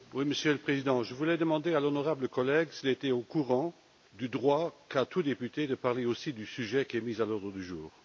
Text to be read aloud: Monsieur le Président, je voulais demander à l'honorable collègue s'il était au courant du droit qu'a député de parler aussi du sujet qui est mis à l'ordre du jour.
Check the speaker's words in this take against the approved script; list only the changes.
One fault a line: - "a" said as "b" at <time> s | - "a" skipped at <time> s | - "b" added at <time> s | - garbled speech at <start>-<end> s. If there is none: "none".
- "tout" added at 5.0 s